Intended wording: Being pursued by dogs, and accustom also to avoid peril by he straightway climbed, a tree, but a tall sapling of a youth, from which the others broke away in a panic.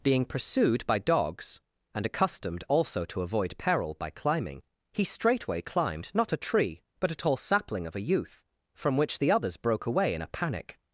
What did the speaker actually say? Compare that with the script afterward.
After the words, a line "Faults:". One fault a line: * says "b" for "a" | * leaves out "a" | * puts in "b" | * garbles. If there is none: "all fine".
Being pursued by dogs, and accustomed also to avoid peril by climbing, he straightway climbed, not a tree, but a tall sapling of a youth, from which the others broke away in a panic.
Faults:
* says "accustomed" for "accustom"
* puts in "climbing"
* puts in "not"